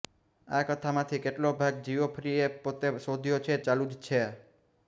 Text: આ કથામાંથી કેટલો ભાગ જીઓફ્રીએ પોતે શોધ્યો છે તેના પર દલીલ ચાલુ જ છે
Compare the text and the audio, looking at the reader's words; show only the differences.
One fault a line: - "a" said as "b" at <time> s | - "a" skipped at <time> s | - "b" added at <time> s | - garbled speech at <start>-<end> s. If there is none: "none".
- "તેના પર દલીલ" skipped at 3.6 s